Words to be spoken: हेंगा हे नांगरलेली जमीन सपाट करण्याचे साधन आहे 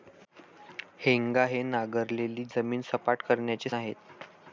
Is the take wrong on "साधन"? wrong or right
wrong